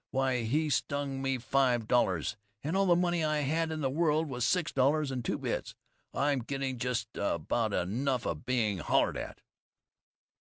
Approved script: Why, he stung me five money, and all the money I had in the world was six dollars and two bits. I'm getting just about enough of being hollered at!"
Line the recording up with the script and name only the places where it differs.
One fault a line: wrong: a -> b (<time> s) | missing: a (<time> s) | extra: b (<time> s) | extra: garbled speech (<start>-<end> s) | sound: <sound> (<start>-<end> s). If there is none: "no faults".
wrong: money -> dollars (1.9 s)